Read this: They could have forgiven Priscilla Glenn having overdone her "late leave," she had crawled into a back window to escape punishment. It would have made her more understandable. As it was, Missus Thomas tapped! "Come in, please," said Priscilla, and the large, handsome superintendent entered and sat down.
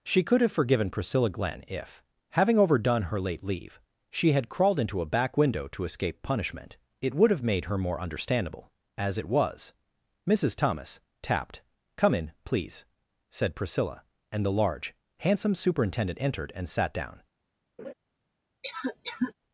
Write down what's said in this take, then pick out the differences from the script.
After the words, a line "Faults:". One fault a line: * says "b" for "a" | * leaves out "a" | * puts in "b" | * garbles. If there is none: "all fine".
She could have forgiven Priscilla Glenn if, having overdone her "late leave," she had crawled into a back window to escape punishment. It would have made her more understandable. As it was, Missus Thomas tapped! "Come in, please," said Priscilla, and the large, handsome superintendent entered and sat down.
Faults:
* says "She" for "They"
* puts in "if"